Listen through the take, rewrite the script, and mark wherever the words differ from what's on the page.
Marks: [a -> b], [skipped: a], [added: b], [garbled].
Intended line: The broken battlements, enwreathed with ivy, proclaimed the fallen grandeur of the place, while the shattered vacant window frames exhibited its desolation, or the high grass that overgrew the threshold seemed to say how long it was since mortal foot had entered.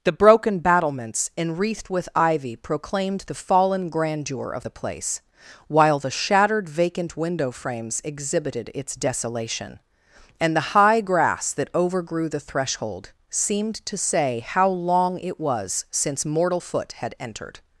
The broken battlements, enwreathed with ivy, proclaimed the fallen grandeur of the place, while the shattered vacant window frames exhibited its desolation, [or -> and] the high grass that overgrew the threshold seemed to say how long it was since mortal foot had entered.